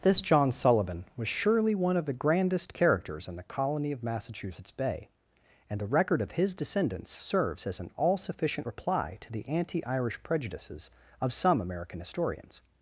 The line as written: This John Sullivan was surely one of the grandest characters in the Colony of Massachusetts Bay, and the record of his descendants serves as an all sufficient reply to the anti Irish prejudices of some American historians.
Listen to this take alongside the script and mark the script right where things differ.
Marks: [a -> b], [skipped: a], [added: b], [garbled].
This John Sullivan was surely one of the grandest characters in the Colony of Massachusetts Bay, and the record of his descendants serves as an all sufficient reply to the anti Irish prejudices of some American historians.